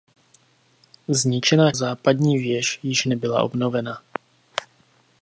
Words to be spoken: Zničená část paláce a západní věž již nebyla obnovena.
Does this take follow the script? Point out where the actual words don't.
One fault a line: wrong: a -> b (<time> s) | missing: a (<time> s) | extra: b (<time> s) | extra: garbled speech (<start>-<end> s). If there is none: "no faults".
missing: část paláce a (1.7 s)